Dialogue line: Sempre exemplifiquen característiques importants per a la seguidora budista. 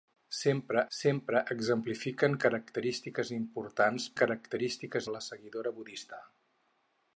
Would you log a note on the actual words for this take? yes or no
yes